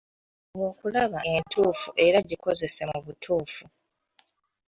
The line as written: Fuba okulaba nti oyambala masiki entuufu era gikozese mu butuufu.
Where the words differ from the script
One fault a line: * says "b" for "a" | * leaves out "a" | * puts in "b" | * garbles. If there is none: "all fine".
* leaves out "nti oyambala masiki"